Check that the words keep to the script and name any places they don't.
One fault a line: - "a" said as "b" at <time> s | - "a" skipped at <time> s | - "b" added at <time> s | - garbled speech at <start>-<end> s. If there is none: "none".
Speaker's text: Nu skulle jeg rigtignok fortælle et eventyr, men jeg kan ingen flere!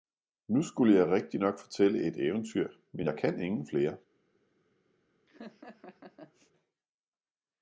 none